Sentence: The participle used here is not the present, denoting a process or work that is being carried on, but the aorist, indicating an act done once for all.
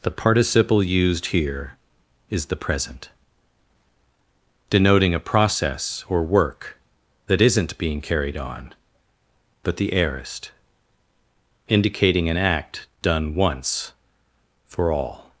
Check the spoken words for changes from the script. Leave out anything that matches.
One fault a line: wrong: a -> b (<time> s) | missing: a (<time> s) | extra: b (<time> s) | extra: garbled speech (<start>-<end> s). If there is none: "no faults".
missing: not (2.5 s)
wrong: is -> isn't (7.4 s)